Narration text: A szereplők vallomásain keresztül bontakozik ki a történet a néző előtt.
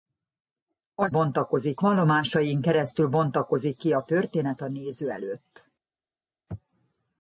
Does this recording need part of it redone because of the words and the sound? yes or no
yes